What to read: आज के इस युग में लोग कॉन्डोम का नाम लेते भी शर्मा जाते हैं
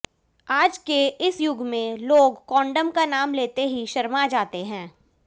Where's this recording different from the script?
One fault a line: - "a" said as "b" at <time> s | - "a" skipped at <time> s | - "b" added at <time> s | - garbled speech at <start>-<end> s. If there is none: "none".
- "भी" said as "ही" at 3.7 s